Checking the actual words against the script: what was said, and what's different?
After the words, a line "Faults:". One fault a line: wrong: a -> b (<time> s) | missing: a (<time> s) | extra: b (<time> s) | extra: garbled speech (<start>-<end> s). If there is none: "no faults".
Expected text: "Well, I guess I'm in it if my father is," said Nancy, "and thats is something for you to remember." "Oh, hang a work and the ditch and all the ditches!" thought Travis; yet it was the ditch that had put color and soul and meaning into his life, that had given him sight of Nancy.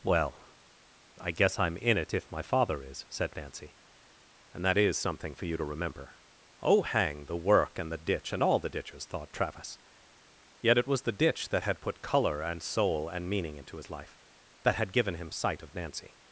"Well, I guess I'm in it if my father is," said Nancy, "and that is something for you to remember." "Oh, hang the work and the ditch and all the ditches!" thought Travis; yet it was the ditch that had put color and soul and meaning into his life, that had given him sight of Nancy.
Faults:
wrong: thats -> that (4.7 s)
wrong: a -> the (7.3 s)